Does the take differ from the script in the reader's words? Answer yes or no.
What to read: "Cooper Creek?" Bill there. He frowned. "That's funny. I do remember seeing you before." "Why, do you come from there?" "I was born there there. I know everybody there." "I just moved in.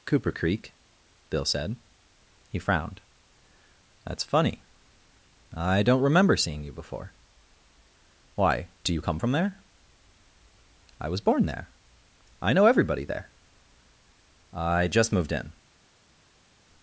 yes